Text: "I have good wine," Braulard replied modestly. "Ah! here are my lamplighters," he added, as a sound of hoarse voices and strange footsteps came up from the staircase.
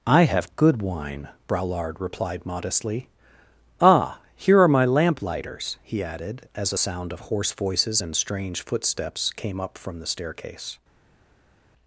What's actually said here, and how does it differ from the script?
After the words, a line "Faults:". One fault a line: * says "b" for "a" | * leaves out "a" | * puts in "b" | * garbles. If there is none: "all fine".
"I have good wine," Braulard replied modestly. "Ah! here are my lamplighters," he added, as a sound of hoarse voices and strange footsteps came up from the staircase.
Faults:
all fine